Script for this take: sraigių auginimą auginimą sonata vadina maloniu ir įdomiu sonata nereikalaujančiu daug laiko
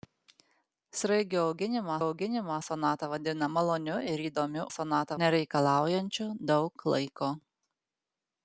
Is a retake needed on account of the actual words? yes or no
no